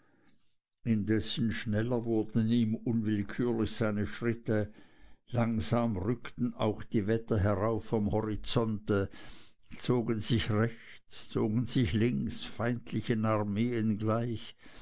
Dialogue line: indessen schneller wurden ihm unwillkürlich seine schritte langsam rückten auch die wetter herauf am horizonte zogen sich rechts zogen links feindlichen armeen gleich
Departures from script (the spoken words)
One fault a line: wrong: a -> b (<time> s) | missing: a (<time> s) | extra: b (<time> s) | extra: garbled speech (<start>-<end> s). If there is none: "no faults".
extra: sich (11.6 s)